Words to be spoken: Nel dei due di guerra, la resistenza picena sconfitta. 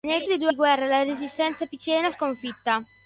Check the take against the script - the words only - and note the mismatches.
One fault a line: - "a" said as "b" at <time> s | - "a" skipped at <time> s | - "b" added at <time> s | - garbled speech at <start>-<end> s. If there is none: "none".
none